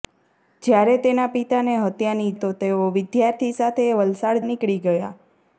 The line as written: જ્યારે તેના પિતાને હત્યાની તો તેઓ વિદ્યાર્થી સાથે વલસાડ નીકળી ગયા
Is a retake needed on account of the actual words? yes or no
no